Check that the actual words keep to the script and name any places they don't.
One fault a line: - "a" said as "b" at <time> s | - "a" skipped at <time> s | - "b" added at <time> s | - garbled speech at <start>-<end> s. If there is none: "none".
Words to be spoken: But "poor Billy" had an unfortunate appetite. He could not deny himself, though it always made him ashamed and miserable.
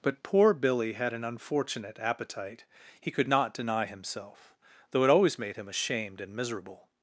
none